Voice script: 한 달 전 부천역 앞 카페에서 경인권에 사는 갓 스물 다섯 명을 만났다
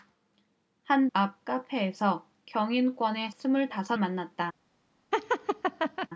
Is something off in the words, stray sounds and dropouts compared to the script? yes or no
yes